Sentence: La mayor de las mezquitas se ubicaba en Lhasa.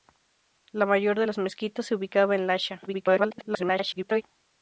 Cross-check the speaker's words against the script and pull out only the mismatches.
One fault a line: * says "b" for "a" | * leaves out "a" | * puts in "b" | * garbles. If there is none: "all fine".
* garbles